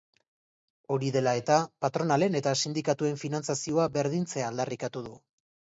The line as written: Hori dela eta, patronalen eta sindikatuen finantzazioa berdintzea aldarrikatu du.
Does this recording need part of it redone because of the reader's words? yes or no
no